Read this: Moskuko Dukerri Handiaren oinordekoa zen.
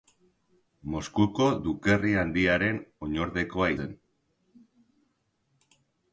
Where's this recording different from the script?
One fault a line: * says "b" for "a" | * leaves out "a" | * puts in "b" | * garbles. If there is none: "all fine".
all fine